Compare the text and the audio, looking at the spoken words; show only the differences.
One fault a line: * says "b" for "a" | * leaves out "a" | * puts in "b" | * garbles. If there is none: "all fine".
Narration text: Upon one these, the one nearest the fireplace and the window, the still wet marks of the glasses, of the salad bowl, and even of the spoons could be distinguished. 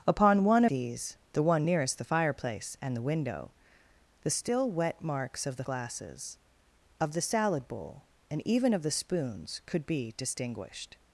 all fine